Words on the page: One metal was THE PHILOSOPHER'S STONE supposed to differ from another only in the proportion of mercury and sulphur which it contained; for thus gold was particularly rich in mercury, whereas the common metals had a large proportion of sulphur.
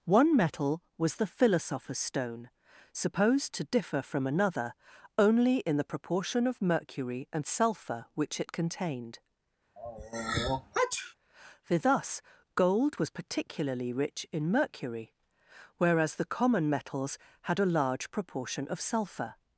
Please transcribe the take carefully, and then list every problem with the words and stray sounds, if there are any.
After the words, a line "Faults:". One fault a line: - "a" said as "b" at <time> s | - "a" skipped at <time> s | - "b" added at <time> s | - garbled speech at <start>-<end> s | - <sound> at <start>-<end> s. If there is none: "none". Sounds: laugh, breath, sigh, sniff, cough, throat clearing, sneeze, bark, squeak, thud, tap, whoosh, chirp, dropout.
One metal was THE PHILOSOPHER'S STONE supposed to differ from another only in the proportion of mercury and sulphur which it contained; for thus gold was particularly rich in mercury, whereas the common metals had a large proportion of sulphur.
Faults:
- sneeze at 9.8-11.1 s